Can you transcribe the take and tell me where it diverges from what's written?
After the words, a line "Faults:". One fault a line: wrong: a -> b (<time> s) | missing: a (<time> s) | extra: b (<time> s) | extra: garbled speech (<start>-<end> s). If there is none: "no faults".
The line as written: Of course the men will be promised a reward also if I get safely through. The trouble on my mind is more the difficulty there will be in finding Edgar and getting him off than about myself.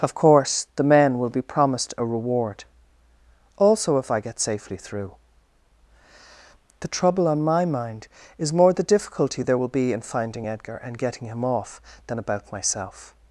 Of course the men will be promised a reward also if I get safely through. The trouble on my mind is more the difficulty there will be in finding Edgar and getting him off than about myself.
Faults:
no faults